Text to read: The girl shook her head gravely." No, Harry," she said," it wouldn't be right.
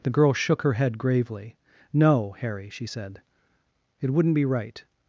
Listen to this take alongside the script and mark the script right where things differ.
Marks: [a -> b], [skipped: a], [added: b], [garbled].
The girl shook her head gravely." No, Harry," she said," it wouldn't be right.